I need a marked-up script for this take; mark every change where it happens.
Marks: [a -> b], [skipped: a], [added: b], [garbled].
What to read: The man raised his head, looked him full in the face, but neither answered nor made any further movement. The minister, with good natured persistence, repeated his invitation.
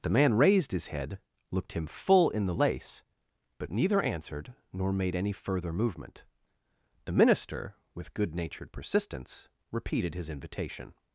The man raised his head, looked him full in the [face, -> lace] but neither answered nor made any further movement. The minister, with good natured persistence, repeated his invitation.